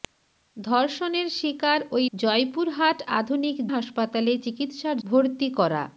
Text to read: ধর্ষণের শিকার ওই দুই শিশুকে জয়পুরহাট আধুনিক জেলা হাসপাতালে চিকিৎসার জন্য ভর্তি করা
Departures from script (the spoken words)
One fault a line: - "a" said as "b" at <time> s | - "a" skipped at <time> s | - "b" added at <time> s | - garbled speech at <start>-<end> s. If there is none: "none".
- "দুই শিশুকে" skipped at 2.0 s
- "জেলা" skipped at 3.5 s
- "জন্য" skipped at 5.0 s